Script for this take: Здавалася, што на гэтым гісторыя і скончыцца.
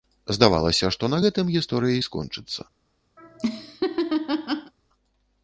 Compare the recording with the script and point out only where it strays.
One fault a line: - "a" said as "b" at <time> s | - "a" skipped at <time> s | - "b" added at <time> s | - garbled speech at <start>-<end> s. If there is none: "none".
none